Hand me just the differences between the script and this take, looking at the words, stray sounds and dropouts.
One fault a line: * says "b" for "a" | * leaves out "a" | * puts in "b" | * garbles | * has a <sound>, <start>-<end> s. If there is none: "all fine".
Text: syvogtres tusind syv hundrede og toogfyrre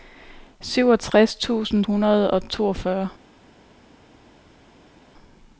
* leaves out "syv"